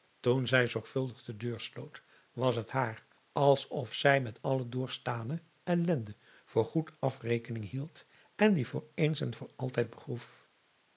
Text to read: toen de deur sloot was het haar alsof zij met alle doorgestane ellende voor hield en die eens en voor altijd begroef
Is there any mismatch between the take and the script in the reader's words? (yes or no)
yes